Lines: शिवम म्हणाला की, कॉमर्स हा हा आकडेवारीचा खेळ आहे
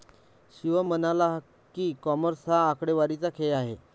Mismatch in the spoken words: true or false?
true